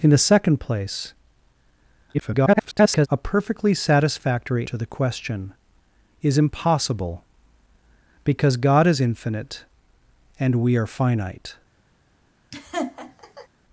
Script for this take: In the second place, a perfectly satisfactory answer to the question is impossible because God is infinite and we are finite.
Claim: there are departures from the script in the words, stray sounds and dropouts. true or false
true